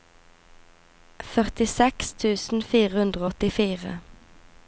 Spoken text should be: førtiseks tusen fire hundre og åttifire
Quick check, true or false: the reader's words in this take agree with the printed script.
true